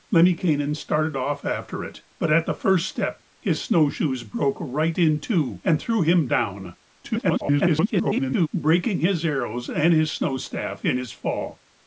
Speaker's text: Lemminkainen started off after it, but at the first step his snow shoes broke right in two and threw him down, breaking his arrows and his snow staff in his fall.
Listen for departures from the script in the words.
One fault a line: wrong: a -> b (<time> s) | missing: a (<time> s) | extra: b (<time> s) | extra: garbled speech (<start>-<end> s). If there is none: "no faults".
extra: garbled speech (7.0-8.5 s)